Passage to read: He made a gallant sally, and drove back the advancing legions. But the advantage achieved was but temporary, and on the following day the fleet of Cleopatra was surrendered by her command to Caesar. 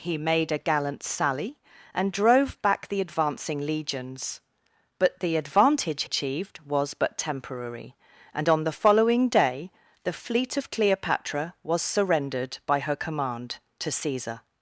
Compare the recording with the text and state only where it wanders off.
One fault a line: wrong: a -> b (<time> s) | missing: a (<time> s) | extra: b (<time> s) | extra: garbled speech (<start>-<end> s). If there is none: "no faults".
no faults